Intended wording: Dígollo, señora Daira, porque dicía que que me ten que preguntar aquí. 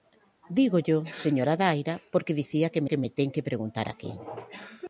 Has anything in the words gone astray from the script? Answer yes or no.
no